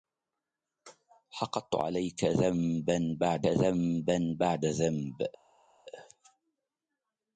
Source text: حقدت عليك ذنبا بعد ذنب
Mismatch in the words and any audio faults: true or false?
true